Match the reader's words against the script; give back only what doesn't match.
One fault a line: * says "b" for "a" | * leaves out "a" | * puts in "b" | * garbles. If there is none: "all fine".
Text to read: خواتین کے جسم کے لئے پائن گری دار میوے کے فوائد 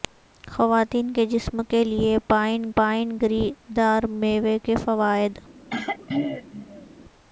* puts in "پائن"